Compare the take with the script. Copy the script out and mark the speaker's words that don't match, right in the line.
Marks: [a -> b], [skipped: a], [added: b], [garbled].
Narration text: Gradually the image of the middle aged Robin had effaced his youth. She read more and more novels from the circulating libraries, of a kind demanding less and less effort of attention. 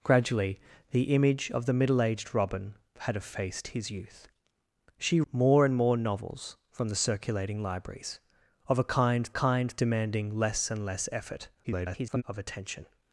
Gradually the image of the middle aged Robin had effaced his youth. She [skipped: read] more and more novels from the circulating libraries, of a kind [added: kind] demanding less and less effort [garbled] of attention.